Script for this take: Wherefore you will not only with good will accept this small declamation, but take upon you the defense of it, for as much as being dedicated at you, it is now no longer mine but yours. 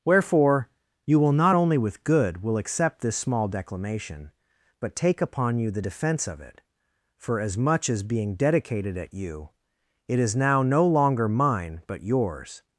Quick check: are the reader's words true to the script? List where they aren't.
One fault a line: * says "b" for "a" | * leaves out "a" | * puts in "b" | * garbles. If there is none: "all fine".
all fine